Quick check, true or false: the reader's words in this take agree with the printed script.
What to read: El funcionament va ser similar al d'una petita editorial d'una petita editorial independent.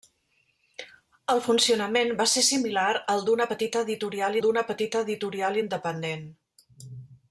true